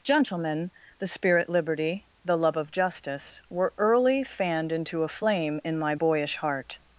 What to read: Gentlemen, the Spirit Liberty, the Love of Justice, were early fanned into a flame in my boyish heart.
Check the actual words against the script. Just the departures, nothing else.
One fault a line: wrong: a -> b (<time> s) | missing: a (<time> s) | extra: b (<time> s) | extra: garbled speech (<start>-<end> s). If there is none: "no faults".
no faults